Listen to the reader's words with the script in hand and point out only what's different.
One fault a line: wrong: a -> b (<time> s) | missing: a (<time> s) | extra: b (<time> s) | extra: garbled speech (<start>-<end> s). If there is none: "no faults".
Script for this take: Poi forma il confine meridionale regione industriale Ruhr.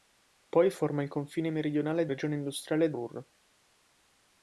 no faults